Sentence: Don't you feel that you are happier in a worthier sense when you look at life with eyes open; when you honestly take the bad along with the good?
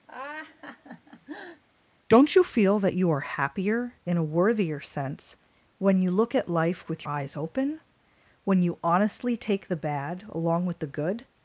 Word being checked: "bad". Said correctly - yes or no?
yes